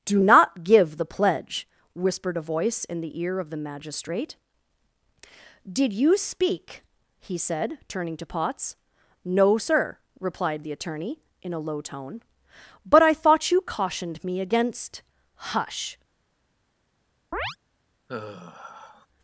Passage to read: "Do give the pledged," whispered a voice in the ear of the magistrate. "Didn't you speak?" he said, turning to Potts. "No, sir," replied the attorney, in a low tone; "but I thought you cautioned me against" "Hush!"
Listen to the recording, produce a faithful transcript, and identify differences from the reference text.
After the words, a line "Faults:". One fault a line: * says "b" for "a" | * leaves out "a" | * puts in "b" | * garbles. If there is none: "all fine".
"Do not give the pledge," whispered a voice in the ear of the magistrate. "Did you speak?" he said, turning to Potts. "No, sir," replied the attorney, in a low tone; "but I thought you cautioned me against" "Hush!"
Faults:
* puts in "not"
* says "pledge" for "pledged"
* says "Did" for "Didn't"